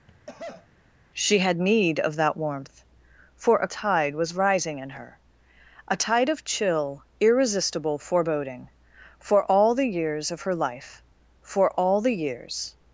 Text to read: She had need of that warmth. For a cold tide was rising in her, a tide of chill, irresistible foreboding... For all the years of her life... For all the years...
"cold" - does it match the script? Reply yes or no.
no